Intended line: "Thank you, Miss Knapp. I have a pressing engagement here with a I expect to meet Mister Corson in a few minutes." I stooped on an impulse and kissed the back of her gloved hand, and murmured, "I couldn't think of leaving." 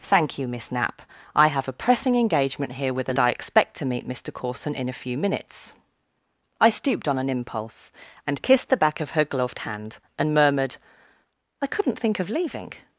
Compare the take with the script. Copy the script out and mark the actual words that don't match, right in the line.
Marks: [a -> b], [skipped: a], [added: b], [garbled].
"Thank you, Miss Knapp. I have a pressing engagement here with a I expect to meet Mister Corson in a few minutes." I stooped on an impulse and kissed the back of her gloved hand, and murmured, "I couldn't think of leaving."